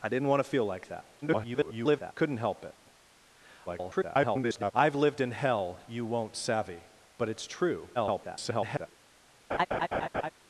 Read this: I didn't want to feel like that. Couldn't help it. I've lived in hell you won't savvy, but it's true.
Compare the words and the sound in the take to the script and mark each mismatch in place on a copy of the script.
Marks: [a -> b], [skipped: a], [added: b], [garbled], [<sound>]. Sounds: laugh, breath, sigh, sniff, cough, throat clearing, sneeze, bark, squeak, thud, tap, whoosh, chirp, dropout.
I didn't want to feel like that. [garbled] Couldn't help it. [garbled] I've lived in hell you won't savvy, but it's true. [garbled] [laugh]